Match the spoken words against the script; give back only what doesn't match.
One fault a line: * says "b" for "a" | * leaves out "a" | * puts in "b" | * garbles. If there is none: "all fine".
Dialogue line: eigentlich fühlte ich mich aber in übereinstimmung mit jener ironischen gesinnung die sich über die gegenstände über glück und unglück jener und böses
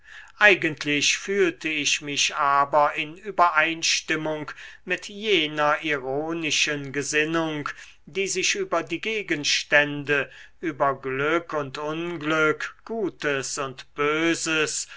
* says "gutes" for "jener"